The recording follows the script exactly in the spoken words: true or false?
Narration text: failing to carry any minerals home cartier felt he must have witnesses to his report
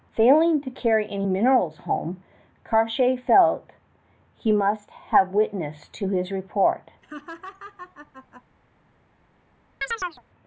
true